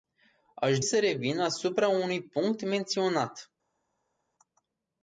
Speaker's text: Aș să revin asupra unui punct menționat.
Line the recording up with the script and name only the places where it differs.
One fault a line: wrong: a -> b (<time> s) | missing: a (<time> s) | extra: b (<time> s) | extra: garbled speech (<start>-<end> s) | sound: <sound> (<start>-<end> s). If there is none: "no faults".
no faults